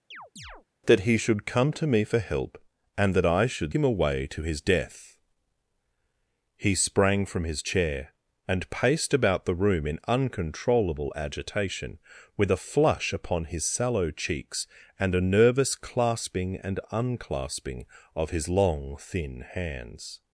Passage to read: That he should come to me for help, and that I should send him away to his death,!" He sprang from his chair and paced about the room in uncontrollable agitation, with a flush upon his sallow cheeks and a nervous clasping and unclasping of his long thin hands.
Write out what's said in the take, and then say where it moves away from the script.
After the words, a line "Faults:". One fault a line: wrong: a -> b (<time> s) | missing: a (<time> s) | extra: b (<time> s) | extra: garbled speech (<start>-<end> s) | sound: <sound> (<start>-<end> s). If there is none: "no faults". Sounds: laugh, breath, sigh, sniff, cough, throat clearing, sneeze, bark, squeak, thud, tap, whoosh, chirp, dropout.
That he should come to me for help, and that I should him away to his death,!" He sprang from his chair and paced about the room in uncontrollable agitation, with a flush upon his sallow cheeks and a nervous clasping and unclasping of his long thin hands.
Faults:
sound: chirp (0.1-0.7 s)
missing: send (3.7 s)